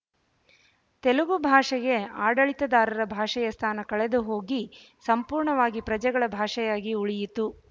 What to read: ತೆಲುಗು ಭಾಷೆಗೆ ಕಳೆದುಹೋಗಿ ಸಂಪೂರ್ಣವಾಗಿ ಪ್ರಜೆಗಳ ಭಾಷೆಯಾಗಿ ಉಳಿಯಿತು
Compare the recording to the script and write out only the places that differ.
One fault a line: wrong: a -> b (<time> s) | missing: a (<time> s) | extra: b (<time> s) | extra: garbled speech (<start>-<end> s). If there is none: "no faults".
extra: ಆಡಳಿತದಾರರ ಭಾಷೆಯ ಸ್ಥಾನ (2.2 s)